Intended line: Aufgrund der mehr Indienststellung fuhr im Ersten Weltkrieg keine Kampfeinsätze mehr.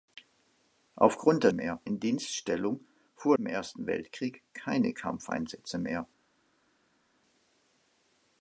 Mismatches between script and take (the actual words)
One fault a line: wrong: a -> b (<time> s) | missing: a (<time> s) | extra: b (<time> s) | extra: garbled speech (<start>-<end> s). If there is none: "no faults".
no faults